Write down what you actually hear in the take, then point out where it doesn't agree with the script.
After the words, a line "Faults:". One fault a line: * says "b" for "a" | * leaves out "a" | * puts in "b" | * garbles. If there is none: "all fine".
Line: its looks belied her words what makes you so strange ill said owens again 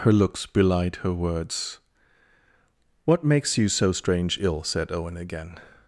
her looks belied her words what makes you so strange ill said owen again
Faults:
* says "her" for "its"
* says "owen" for "owens"